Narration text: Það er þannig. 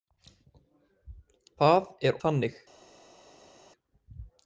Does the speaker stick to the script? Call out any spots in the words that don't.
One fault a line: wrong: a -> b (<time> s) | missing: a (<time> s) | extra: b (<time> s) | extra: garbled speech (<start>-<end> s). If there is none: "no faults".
no faults